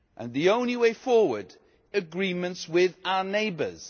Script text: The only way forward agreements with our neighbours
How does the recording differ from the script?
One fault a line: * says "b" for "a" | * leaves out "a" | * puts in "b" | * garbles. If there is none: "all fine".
all fine